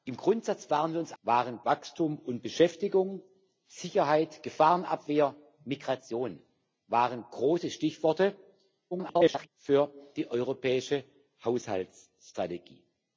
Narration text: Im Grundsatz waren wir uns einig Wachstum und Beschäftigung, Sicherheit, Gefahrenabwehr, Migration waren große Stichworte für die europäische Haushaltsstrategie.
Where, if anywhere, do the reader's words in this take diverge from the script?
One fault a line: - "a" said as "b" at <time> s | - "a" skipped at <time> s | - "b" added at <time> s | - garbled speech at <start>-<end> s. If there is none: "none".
- "einig" said as "waren" at 1.2 s
- garbled speech at 8.9-9.5 s